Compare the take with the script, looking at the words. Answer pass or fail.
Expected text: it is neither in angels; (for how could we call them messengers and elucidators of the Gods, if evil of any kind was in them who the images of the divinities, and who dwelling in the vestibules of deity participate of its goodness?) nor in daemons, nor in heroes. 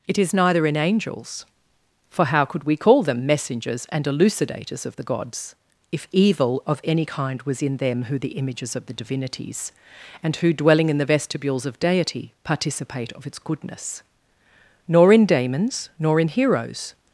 pass